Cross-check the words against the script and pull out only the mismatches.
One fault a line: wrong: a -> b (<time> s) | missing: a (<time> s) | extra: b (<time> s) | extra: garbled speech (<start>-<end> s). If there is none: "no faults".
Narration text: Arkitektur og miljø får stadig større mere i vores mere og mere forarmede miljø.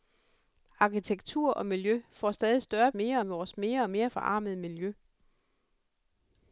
no faults